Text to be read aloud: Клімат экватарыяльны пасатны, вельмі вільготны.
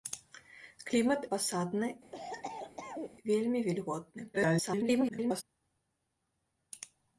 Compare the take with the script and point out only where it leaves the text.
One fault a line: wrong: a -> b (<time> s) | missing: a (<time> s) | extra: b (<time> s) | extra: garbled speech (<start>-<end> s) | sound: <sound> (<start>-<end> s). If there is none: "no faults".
missing: экватарыяльны (1.2 s)
sound: cough (2.1-3.2 s)
extra: garbled speech (4.3-5.4 s)